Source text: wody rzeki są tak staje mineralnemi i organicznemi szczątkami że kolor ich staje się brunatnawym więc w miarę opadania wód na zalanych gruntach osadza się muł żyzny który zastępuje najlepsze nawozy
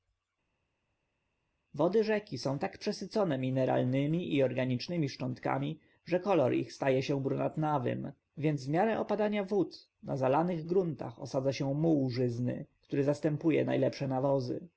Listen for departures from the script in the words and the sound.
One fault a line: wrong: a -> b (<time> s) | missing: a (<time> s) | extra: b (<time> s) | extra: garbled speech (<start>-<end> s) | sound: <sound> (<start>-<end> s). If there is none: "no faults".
wrong: staje -> przesycone (2.8 s)